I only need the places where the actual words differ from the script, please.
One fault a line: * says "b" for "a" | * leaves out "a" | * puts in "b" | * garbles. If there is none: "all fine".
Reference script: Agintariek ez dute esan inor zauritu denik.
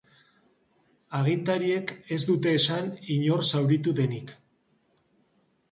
all fine